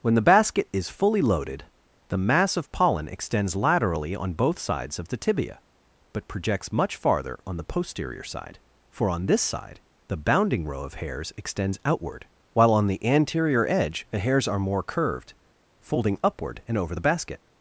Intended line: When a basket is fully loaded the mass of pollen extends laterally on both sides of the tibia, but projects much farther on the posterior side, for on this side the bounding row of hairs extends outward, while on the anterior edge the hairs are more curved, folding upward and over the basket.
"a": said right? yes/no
no